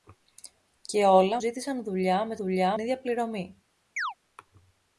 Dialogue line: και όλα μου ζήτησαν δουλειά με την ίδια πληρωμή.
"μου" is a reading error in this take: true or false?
true